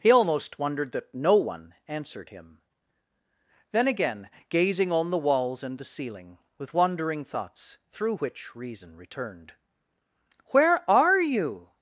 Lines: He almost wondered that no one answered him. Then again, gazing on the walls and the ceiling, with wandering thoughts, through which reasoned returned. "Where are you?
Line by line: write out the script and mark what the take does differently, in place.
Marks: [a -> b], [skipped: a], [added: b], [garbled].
He almost wondered that no one answered him. Then again, gazing on the walls and the ceiling, with wandering thoughts, through which [reasoned -> reason] returned. "Where are you?